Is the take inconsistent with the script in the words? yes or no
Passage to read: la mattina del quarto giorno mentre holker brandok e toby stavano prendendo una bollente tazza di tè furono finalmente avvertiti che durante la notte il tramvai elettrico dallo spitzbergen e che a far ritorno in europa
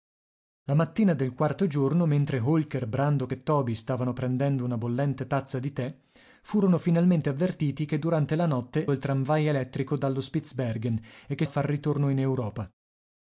no